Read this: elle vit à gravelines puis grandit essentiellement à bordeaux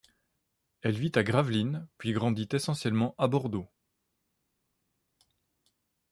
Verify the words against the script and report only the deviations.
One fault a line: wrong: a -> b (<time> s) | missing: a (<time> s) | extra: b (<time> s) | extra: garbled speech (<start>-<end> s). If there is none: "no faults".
no faults